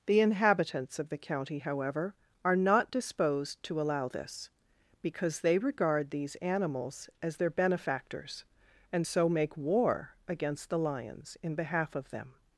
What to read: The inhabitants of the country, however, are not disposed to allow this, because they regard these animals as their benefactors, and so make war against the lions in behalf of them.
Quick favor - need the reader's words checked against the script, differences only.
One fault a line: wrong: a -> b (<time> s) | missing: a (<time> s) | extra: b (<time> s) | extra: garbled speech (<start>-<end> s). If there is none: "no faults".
wrong: country -> county (1.2 s)